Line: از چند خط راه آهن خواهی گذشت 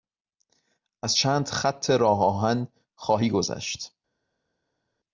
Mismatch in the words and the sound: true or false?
false